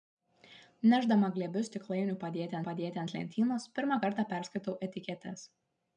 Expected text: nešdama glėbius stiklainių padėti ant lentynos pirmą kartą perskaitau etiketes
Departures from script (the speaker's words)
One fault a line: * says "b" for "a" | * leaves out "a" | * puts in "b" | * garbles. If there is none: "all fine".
* puts in "padėti"